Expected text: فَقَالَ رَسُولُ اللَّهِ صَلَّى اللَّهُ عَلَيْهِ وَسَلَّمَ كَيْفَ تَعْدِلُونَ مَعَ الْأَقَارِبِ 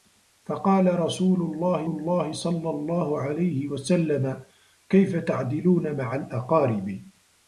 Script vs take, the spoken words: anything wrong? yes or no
yes